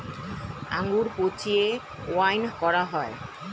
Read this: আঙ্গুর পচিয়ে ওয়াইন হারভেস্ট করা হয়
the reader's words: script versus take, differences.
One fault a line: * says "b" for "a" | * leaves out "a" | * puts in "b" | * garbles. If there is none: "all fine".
* leaves out "হারভেস্ট"